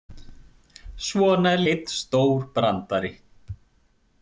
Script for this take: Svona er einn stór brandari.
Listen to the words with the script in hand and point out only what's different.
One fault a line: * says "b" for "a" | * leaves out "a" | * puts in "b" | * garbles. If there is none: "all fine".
all fine